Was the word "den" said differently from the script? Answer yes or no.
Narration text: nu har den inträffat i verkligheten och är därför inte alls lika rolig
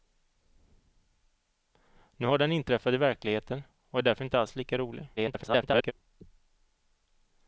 no